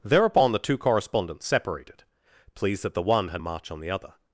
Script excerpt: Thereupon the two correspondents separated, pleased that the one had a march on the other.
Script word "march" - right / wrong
right